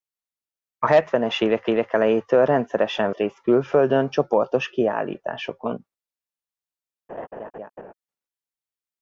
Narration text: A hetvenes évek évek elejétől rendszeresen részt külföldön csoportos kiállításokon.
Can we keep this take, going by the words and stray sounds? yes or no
no